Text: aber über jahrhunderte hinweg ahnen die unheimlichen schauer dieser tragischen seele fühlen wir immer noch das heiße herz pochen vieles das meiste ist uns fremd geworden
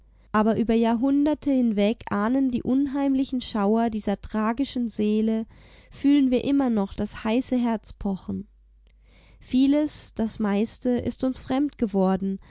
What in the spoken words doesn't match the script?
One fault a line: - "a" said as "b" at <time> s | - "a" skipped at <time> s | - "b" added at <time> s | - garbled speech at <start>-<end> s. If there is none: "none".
none